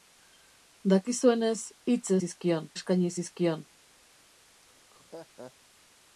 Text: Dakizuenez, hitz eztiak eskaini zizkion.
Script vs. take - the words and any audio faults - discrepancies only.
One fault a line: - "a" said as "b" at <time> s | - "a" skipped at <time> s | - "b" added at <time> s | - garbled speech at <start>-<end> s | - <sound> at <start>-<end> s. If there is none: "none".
- "eztiak" said as "zizkion" at 2.2 s
- laugh at 4.6-5.5 s